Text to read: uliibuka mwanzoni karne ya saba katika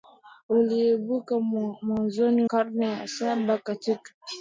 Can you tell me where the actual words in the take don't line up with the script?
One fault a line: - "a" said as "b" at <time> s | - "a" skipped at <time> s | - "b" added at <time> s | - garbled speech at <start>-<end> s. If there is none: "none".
none